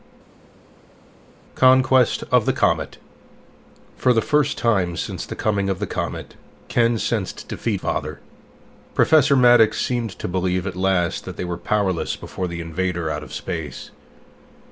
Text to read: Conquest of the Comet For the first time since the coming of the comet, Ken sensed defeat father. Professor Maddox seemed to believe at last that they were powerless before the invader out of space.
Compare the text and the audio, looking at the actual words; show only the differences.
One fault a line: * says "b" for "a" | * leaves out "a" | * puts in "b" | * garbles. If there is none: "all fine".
all fine